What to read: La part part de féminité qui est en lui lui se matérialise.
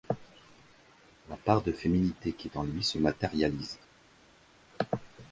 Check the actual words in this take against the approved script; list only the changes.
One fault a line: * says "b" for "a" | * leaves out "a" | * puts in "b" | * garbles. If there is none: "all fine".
* leaves out "part"
* leaves out "lui"